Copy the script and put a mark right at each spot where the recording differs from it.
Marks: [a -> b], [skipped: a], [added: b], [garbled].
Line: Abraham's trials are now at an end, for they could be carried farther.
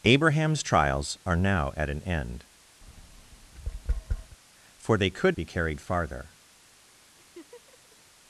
Abraham's trials are now at an end, for they could be carried farther.